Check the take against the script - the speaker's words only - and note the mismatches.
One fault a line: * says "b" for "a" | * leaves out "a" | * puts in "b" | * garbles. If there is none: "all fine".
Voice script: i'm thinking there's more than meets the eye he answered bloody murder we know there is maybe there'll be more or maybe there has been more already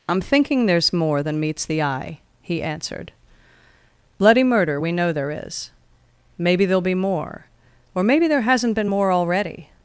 * says "hasn't" for "has"